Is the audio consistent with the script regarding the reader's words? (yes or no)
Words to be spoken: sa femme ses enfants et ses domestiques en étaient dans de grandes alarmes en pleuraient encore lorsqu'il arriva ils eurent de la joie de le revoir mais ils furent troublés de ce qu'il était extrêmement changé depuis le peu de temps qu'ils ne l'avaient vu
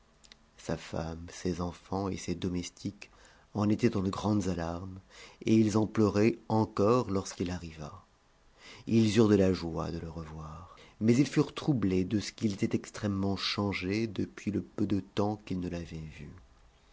no